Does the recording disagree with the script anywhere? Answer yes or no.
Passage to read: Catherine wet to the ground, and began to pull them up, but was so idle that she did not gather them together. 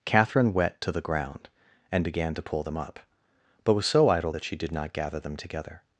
no